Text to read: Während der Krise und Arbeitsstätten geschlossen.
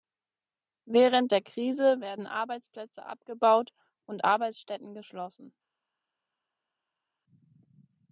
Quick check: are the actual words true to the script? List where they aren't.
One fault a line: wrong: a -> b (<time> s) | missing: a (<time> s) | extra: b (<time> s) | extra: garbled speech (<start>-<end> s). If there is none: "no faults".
extra: werden Arbeitsplätze abgebaut (2.0 s)